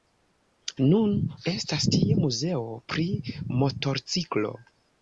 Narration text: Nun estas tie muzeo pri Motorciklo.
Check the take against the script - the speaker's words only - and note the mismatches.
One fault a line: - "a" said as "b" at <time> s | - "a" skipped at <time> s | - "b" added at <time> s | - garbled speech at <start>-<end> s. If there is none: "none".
none